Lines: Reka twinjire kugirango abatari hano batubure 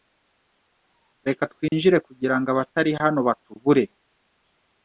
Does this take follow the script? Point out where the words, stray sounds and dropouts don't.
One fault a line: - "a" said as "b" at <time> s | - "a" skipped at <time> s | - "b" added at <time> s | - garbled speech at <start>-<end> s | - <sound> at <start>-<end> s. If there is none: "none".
- dropout at 1.7-1.7 s